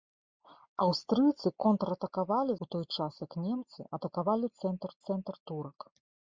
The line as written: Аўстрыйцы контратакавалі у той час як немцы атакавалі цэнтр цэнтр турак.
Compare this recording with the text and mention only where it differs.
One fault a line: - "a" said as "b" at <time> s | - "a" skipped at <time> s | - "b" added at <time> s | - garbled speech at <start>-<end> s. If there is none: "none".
none